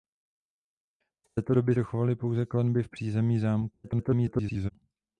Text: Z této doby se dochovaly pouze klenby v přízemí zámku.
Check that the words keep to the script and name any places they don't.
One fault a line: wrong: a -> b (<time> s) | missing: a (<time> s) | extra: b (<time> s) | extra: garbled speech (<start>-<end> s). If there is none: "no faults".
missing: se (1.8 s)
extra: garbled speech (3.8-4.7 s)